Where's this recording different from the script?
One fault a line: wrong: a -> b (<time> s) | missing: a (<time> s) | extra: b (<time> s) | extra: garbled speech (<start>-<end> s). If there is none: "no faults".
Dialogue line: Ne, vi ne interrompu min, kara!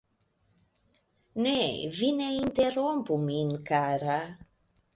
no faults